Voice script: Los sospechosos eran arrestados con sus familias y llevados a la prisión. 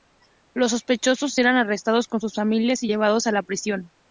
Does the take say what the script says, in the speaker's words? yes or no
yes